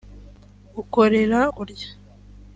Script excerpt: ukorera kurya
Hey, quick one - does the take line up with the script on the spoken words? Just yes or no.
yes